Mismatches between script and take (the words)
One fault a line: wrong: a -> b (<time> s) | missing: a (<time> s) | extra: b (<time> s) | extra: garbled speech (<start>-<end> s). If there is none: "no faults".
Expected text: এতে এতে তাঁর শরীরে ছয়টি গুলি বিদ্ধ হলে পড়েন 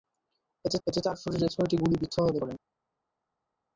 no faults